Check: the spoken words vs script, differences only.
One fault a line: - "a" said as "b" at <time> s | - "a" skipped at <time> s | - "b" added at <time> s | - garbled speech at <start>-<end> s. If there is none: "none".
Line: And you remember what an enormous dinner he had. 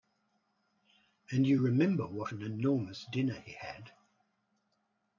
none